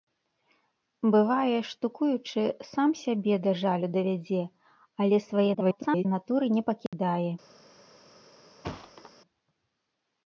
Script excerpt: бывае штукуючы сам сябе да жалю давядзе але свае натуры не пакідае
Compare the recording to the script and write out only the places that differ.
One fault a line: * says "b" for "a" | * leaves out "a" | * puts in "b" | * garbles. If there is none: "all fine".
* garbles